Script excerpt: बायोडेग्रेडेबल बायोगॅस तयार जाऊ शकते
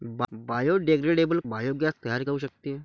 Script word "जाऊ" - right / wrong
right